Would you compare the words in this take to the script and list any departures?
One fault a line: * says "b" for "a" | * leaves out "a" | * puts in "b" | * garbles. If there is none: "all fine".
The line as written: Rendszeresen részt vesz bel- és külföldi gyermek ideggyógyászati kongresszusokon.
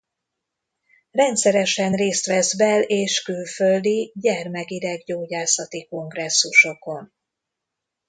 all fine